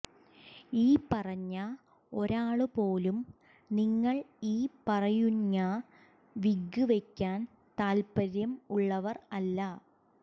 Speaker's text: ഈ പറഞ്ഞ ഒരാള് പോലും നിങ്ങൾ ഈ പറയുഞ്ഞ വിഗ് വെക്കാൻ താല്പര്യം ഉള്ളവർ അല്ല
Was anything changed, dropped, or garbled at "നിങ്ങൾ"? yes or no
no